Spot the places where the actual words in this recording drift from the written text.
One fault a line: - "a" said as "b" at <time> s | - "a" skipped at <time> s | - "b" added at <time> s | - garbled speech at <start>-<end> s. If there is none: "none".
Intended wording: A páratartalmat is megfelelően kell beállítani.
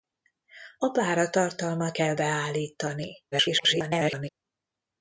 - "is megfelelően" skipped at 2.0 s
- garbled speech at 3.3-4.3 s